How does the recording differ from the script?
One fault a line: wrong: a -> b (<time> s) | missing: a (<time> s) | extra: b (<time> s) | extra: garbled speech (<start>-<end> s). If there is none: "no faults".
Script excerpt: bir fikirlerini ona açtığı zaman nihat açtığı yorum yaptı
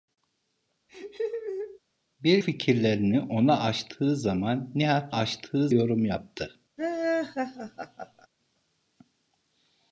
no faults